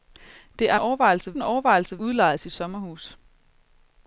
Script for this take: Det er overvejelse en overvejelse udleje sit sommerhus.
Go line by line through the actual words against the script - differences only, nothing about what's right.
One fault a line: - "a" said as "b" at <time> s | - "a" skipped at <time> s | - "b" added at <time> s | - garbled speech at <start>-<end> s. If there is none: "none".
none